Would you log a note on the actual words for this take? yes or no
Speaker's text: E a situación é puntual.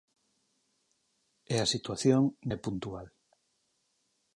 no